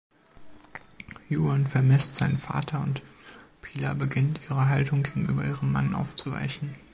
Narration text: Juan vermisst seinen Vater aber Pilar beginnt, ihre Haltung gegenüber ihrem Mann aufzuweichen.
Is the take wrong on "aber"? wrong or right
wrong